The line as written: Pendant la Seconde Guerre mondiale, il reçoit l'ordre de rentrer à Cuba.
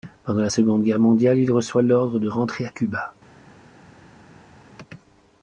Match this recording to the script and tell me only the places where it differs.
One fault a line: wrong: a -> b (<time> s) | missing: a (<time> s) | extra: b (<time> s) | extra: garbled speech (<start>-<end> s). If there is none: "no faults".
no faults